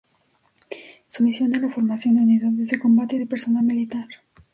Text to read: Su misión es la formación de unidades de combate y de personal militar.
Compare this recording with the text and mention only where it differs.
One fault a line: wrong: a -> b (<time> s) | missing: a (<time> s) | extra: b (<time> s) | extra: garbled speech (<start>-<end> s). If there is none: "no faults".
no faults